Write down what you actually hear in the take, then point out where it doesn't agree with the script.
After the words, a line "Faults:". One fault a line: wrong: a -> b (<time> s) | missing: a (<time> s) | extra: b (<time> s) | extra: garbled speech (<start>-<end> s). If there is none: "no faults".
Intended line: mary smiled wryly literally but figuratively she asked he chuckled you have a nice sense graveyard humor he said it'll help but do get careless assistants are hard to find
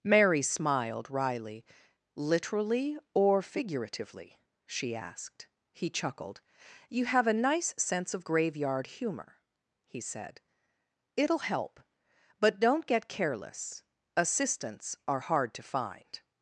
mary smiled wryly literally or figuratively she asked he chuckled you have a nice sense of graveyard humor he said it'll help but don't get careless assistants are hard to find
Faults:
wrong: but -> or (3.1 s)
extra: of (8.1 s)
wrong: do -> don't (12.6 s)